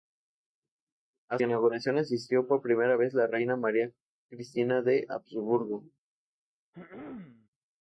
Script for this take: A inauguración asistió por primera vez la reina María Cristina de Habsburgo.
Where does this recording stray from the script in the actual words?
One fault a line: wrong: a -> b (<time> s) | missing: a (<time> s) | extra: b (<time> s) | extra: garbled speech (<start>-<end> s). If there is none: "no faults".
no faults